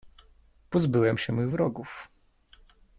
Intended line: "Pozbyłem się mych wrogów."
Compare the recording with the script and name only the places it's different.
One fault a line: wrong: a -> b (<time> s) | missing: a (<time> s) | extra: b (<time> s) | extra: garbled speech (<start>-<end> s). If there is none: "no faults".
no faults